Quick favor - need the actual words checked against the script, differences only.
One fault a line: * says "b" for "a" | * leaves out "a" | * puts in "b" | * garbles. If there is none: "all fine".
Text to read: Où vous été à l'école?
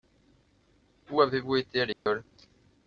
* puts in "avez"